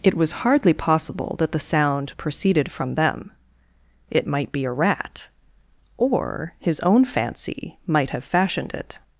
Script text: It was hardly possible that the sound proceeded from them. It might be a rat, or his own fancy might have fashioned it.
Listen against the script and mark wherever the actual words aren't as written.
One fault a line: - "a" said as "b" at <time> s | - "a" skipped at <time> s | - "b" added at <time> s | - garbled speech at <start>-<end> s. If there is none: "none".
none